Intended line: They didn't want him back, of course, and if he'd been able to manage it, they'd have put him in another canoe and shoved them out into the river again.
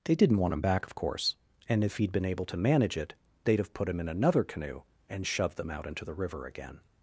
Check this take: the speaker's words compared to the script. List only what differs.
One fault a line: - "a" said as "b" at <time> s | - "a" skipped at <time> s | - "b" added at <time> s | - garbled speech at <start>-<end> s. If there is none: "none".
none